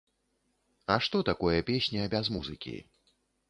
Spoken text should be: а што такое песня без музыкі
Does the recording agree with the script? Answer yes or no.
yes